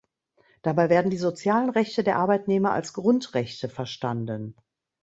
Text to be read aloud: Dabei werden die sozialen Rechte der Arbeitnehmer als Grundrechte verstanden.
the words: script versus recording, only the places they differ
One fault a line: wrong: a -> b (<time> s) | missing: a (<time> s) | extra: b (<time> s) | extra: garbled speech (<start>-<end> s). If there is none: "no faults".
no faults